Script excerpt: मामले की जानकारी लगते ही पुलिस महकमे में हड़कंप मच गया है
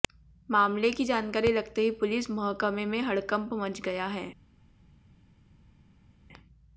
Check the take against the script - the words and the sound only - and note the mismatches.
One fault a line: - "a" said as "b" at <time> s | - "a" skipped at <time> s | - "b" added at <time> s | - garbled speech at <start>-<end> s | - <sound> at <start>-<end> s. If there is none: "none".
none